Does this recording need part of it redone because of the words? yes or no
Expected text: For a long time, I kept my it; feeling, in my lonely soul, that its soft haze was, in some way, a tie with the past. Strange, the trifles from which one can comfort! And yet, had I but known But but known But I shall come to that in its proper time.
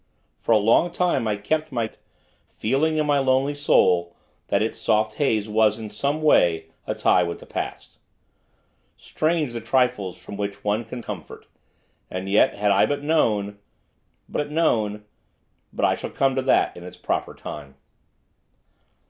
no